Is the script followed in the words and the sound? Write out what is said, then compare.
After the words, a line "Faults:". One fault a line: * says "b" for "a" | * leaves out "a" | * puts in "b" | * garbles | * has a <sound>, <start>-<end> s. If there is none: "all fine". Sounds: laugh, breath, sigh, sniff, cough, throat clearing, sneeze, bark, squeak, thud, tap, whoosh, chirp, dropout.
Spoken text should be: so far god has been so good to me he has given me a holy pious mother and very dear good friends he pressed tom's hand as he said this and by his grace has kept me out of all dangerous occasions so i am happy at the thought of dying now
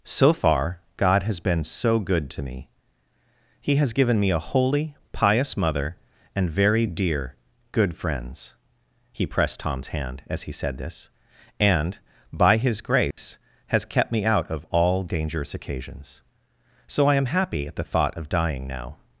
so far god has been so good to me he has given me a holy pious mother and very dear good friends he pressed tom's hand as he said this and by his grace has kept me out of all dangerous occasions so i am happy at the thought of dying now
Faults:
* has a dropout, 13.1-13.2 s